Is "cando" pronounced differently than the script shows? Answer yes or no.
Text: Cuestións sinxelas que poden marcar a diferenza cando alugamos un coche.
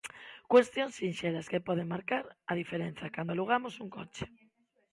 no